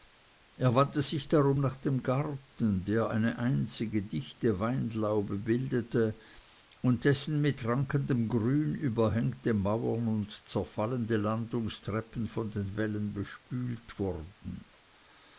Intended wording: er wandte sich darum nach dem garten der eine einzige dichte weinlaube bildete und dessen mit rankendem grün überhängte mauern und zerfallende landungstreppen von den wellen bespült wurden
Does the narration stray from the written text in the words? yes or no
no